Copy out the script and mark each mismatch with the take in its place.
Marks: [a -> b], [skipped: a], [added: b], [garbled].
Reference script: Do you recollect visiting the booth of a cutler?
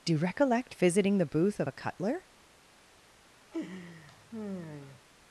Do you recollect visiting the booth of a cutler?